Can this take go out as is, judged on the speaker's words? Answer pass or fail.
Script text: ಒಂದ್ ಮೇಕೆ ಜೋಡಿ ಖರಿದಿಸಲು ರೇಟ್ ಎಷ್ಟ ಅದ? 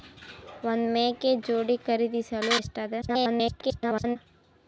fail